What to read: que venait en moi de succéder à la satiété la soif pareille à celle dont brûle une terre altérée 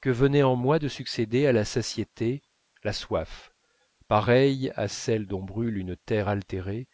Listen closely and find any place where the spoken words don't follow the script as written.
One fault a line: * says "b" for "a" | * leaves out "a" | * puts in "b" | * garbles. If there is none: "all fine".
all fine